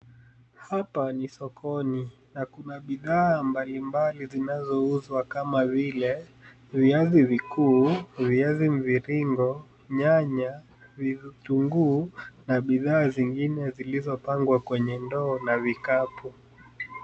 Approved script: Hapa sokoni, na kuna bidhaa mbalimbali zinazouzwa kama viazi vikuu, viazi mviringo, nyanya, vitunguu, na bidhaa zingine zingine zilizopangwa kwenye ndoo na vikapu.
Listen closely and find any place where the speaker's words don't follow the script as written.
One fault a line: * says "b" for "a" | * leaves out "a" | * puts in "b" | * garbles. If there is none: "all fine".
* puts in "ni"
* puts in "vile"
* leaves out "zingine"